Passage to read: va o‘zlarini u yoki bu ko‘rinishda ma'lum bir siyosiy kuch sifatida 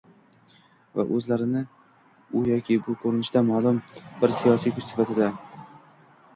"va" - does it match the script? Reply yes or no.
yes